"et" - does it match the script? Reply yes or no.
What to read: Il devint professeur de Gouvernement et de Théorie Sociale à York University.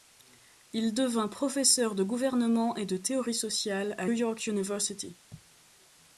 yes